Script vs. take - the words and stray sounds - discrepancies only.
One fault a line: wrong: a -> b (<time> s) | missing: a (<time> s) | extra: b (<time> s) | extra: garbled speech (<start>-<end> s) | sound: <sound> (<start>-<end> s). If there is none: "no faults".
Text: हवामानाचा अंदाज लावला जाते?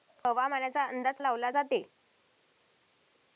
no faults